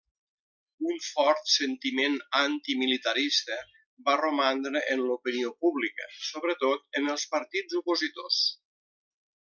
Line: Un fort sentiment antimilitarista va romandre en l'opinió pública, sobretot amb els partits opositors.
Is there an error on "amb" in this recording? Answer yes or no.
yes